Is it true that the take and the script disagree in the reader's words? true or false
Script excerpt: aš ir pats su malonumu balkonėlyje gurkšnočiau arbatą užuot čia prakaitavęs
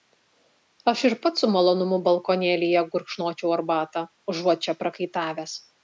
false